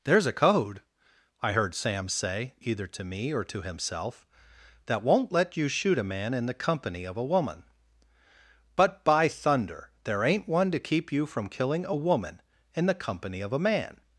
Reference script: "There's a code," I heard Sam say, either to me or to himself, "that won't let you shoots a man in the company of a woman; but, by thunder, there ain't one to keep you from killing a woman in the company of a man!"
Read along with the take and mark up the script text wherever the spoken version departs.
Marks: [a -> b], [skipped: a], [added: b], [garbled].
"There's a code," I heard Sam say, either to me or to himself, "that won't let you [shoots -> shoot] a man in the company of a woman; but, by thunder, there ain't one to keep you from killing a woman in the company of a man!"